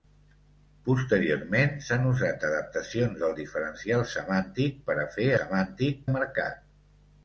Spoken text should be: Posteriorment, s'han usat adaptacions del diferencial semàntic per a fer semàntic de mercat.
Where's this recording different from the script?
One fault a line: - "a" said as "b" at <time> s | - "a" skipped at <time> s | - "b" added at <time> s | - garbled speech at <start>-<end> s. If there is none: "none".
none